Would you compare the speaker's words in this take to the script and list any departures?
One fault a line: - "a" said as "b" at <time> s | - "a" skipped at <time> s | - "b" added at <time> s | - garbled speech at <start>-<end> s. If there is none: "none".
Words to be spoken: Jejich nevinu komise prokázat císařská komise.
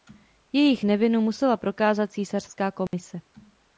- "komise" said as "musela" at 1.2 s